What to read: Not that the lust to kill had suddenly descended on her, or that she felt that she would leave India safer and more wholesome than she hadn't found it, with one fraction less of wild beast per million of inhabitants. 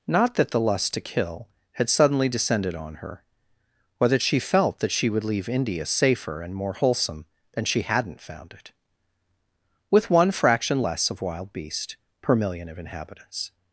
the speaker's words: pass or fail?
pass